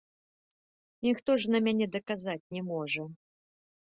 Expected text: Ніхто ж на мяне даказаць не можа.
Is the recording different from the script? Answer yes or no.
no